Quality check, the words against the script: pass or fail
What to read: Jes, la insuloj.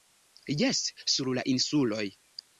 fail